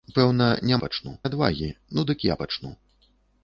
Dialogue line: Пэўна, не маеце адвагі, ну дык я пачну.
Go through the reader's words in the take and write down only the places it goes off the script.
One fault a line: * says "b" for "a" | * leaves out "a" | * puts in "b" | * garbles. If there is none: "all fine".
* says "пачну" for "маеце"